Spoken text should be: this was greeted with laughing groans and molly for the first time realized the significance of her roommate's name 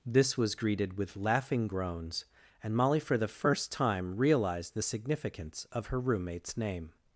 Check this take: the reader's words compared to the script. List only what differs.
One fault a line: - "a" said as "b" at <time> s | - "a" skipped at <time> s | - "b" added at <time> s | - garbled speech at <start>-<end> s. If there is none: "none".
none